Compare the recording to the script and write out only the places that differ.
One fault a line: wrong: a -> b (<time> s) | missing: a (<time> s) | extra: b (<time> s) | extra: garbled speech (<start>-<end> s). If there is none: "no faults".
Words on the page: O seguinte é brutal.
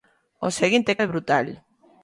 no faults